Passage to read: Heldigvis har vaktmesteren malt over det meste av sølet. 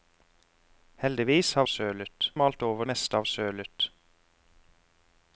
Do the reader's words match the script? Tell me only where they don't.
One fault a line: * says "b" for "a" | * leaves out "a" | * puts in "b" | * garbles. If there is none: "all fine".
* says "sølet" for "vaktmesteren"
* leaves out "det"